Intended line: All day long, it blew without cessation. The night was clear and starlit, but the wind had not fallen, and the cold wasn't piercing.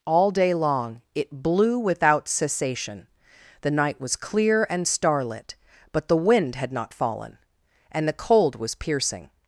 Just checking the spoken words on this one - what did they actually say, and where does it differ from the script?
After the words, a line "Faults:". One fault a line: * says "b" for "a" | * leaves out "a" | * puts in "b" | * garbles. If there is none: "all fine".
All day long, it blew without cessation. The night was clear and starlit, but the wind had not fallen, and the cold was piercing.
Faults:
* says "was" for "wasn't"